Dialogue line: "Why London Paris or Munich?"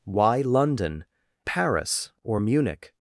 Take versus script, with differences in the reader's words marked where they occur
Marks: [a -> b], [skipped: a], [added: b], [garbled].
"Why London Paris or Munich?"